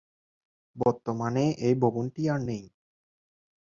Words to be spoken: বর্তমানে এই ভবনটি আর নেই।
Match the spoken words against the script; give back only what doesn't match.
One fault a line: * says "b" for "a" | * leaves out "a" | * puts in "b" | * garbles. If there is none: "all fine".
all fine